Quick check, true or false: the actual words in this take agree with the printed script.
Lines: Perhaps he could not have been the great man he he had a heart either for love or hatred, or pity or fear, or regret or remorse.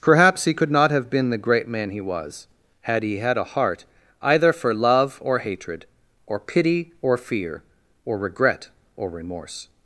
false